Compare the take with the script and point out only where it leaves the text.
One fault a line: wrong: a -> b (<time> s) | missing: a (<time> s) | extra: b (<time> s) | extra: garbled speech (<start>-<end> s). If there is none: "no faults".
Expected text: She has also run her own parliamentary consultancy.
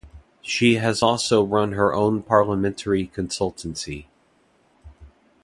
no faults